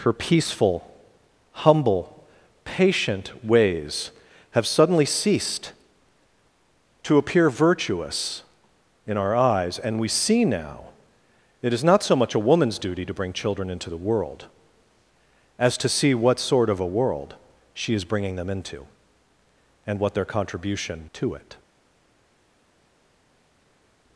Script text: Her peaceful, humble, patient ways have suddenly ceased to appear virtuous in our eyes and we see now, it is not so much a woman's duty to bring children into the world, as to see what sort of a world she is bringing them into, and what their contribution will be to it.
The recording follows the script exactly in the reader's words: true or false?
false